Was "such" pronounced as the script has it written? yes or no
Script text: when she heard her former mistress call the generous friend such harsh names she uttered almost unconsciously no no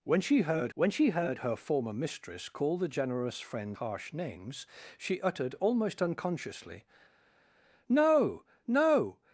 no